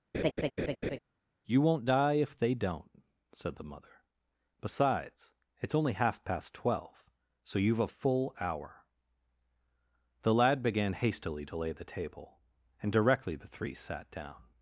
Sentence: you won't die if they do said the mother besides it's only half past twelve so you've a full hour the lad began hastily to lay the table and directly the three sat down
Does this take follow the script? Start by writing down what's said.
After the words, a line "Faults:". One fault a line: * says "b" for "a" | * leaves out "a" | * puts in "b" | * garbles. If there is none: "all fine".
you won't die if they don't said the mother besides it's only half past twelve so you've a full hour the lad began hastily to lay the table and directly the three sat down
Faults:
* says "don't" for "do"